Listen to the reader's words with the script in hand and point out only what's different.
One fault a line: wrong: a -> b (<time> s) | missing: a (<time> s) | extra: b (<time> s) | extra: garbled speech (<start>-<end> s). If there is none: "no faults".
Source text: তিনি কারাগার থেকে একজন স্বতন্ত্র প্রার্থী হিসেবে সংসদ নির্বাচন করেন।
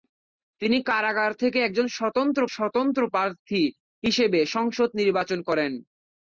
extra: স্বতন্ত্র (2.5 s)